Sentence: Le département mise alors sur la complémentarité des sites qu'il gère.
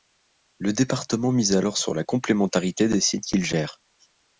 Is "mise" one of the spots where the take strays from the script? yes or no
no